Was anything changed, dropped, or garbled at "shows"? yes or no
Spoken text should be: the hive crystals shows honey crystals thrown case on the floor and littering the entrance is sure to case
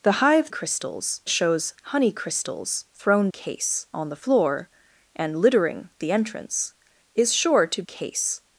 no